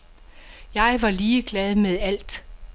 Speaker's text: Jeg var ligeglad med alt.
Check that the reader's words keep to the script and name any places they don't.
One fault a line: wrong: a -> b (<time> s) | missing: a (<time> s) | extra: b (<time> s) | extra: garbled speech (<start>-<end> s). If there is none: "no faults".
no faults